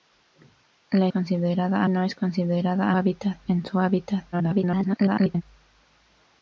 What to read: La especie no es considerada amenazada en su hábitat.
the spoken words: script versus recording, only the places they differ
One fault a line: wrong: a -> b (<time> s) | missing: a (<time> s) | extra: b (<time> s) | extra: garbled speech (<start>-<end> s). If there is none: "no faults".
wrong: especie -> considerada (1.1 s)
wrong: amenazada -> hábitat (2.9 s)
extra: garbled speech (4.3-5.4 s)